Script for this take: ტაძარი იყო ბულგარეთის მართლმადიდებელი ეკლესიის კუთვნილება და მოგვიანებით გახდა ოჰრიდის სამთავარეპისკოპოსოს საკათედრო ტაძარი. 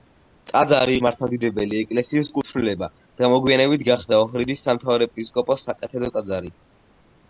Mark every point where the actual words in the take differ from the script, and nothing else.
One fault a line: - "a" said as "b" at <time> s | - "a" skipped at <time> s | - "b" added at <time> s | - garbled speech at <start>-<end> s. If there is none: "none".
- "იყო ბულგარეთის" skipped at 0.9 s